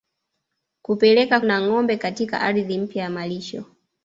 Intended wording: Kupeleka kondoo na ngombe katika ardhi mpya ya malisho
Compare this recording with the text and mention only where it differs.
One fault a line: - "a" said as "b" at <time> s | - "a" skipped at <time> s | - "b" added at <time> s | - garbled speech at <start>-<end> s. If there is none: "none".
- "kondoo" skipped at 1.4 s